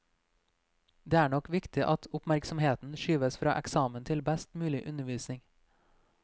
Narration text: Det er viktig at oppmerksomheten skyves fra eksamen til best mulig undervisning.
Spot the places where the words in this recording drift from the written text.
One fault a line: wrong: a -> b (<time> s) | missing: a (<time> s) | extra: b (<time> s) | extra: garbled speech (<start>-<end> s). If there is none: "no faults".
extra: nok (1.3 s)